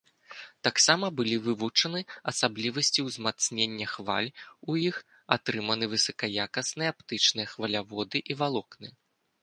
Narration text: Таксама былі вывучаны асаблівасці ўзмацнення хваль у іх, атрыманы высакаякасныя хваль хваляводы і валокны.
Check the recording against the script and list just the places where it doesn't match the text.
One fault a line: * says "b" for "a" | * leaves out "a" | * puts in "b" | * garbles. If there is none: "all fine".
* says "аптычныя" for "хваль"